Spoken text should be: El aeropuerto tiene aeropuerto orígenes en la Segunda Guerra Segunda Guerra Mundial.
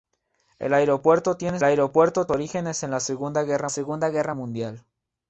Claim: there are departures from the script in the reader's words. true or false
false